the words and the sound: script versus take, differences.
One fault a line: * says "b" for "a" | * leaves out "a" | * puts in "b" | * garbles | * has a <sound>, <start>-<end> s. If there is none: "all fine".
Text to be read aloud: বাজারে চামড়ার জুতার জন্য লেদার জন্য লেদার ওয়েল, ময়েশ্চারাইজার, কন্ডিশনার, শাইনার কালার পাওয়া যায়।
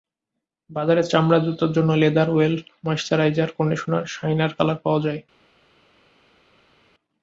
* leaves out "জন্য লেদার"